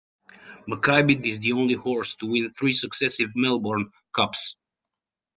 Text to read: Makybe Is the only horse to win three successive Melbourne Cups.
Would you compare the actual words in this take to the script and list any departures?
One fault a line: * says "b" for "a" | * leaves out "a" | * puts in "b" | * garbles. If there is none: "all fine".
all fine